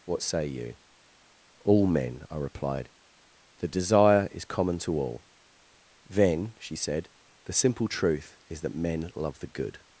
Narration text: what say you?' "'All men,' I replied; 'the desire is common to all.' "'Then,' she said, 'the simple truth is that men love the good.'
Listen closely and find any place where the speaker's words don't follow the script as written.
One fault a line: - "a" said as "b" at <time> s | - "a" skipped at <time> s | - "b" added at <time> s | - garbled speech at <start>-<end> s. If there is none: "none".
none